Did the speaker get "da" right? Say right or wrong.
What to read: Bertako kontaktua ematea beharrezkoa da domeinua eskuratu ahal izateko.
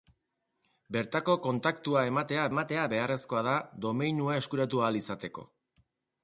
right